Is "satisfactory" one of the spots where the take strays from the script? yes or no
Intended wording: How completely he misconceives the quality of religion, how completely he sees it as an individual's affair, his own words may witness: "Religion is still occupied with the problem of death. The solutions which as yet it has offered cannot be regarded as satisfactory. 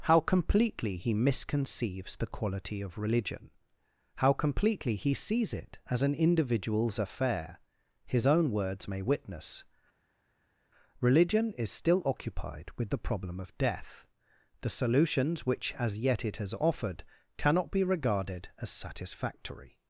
no